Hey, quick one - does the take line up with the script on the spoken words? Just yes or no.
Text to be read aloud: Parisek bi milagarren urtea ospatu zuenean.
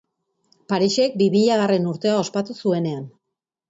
yes